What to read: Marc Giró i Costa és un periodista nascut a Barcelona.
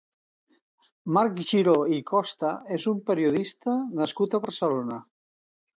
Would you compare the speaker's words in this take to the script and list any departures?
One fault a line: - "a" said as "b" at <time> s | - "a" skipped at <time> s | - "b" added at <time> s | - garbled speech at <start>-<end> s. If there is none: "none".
none